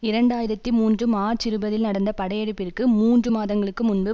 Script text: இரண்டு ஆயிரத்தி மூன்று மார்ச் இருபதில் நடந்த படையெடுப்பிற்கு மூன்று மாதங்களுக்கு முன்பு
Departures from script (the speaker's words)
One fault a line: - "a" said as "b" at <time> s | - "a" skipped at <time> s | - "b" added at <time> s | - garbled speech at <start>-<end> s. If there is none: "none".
none